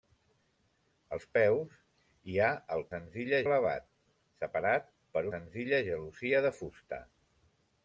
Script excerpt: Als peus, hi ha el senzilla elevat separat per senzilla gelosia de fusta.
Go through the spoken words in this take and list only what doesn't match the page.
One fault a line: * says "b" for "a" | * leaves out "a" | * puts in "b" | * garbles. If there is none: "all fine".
all fine